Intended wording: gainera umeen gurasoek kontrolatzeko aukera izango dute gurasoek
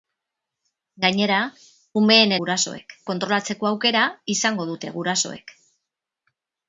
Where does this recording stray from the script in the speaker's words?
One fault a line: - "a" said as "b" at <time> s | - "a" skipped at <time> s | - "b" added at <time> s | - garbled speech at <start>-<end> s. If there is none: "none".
none